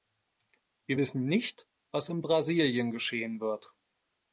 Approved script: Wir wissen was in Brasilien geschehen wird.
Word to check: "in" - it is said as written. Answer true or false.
true